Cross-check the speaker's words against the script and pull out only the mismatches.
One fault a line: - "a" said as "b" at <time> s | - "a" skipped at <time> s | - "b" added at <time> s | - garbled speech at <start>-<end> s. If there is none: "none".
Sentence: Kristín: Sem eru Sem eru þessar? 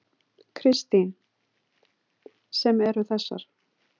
- "Sem eru" skipped at 3.1 s